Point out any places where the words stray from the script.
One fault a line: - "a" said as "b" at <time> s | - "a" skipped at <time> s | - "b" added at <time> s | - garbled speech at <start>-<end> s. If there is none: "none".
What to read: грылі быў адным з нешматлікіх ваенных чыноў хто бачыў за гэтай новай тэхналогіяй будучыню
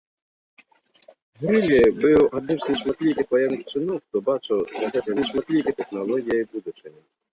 - "новай" said as "нешматлікіх" at 5.2 s